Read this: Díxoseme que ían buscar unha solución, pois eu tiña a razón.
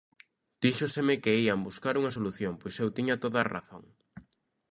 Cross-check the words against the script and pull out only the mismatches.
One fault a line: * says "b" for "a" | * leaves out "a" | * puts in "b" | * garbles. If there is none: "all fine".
* puts in "toda"